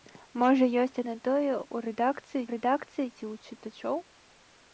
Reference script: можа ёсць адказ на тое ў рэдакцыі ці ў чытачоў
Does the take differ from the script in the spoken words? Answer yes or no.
yes